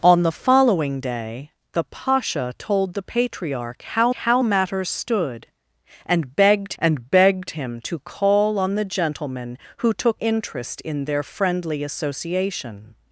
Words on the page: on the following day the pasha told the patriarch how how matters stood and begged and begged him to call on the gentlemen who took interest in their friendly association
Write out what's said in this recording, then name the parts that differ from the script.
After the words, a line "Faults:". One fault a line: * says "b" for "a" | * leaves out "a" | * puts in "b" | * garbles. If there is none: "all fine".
on the following day the pasha told the patriarch how how matters stood and begged and begged him to call on the gentlemen who took interest in their friendly association
Faults:
all fine